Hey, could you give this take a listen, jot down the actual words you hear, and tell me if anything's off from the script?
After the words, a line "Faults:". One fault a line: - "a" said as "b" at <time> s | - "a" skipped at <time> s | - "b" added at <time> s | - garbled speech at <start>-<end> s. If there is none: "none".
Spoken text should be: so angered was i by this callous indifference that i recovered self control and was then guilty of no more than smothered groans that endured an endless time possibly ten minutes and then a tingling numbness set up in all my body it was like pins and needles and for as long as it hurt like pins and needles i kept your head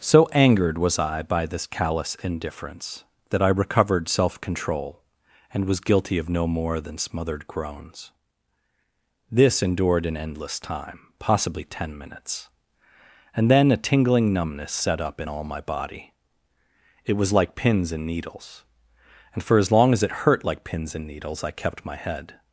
so angered was i by this callous indifference that i recovered self control and was guilty of no more than smothered groans this endured an endless time possibly ten minutes and then a tingling numbness set up in all my body it was like pins and needles and for as long as it hurt like pins and needles i kept my head
Faults:
- "then" skipped at 5.8 s
- "that" said as "this" at 9.3 s
- "your" said as "my" at 21.8 s